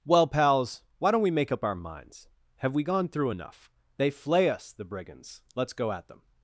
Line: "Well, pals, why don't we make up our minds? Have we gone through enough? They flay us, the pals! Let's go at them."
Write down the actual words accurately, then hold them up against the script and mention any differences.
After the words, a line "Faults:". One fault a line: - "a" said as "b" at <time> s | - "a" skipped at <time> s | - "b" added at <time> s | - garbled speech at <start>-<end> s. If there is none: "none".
"Well, pals, why don't we make up our minds? Have we gone through enough? They flay us, the brigands! Let's go at them."
Faults:
- "pals" said as "brigands" at 4.9 s